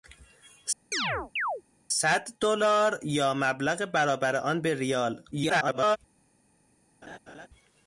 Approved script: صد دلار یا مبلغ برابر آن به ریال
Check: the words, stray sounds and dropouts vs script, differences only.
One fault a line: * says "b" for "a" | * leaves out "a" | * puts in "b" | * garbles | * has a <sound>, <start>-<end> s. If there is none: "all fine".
* has a chirp, 0.9-1.6 s
* garbles
* has a laugh, 7.0-7.5 s